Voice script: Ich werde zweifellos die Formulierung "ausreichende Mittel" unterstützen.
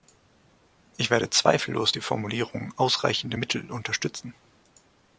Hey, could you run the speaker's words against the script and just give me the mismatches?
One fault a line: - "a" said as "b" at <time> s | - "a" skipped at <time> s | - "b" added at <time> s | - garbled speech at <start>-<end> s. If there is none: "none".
none